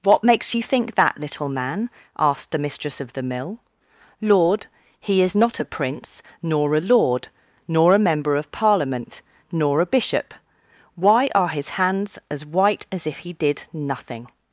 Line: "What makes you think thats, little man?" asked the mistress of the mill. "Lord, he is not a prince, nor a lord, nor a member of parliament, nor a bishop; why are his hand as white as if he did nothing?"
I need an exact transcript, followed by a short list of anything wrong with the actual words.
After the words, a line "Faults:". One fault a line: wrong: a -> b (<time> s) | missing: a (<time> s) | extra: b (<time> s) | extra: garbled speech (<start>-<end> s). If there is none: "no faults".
"What makes you think that, little man?" asked the mistress of the mill. "Lord, he is not a prince, nor a lord, nor a member of parliament, nor a bishop; why are his hands as white as if he did nothing?"
Faults:
wrong: thats -> that (1.0 s)
wrong: hand -> hands (11.8 s)